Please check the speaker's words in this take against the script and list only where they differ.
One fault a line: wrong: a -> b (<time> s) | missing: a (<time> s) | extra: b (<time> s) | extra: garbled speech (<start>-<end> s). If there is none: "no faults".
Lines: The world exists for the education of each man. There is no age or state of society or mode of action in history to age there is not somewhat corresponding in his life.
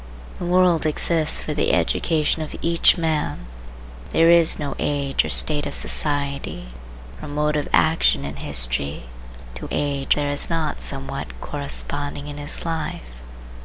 no faults